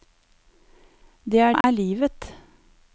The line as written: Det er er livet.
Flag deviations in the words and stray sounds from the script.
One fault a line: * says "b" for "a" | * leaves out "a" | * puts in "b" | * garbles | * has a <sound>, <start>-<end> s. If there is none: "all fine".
* has a dropout, 1.6-1.6 s